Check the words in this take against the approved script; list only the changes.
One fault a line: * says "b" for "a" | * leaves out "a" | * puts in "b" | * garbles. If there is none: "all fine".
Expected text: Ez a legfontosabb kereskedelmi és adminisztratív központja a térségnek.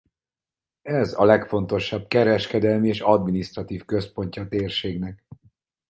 all fine